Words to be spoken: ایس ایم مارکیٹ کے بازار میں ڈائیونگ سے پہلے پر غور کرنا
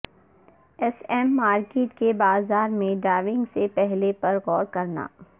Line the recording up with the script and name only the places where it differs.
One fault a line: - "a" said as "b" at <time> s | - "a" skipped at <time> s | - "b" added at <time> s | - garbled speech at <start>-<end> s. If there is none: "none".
none